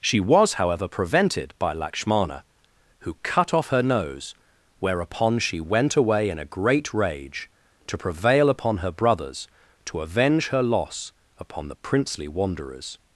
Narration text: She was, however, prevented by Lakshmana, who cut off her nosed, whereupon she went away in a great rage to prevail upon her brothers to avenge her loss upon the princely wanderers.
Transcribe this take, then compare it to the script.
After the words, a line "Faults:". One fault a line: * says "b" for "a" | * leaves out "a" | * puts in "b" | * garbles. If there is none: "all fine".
She was, however, prevented by Lakshmana, who cut off her nose, whereupon she went away in a great rage to prevail upon her brothers to avenge her loss upon the princely wanderers.
Faults:
* says "nose" for "nosed"